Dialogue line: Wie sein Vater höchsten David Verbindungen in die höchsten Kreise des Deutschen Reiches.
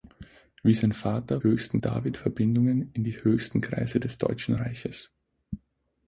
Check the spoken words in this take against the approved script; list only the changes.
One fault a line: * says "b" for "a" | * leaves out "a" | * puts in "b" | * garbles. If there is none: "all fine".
all fine